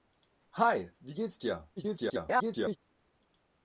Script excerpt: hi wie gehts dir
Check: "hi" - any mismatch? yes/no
no